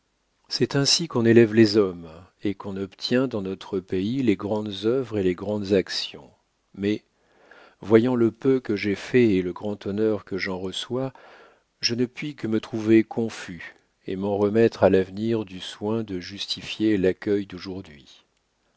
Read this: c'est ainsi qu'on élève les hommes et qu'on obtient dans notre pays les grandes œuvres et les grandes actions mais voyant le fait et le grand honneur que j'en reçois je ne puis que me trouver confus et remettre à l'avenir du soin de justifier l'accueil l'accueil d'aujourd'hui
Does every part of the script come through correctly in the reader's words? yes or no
no